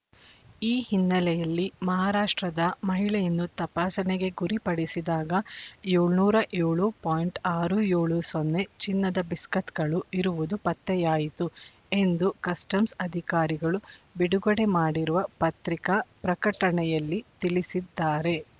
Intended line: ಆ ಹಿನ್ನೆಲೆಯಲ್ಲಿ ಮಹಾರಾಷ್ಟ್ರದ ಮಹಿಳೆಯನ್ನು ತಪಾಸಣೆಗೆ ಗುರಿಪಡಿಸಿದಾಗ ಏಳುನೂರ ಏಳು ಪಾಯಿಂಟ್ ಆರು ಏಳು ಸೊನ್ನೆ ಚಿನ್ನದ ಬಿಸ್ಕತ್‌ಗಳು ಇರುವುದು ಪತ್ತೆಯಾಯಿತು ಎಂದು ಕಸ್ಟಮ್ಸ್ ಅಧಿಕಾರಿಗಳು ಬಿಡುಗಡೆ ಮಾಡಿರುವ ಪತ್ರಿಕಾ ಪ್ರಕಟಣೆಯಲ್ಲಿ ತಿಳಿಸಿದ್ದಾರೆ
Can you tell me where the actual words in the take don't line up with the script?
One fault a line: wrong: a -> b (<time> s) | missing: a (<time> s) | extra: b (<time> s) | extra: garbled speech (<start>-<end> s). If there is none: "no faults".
wrong: ಆ -> ಈ (0.6 s)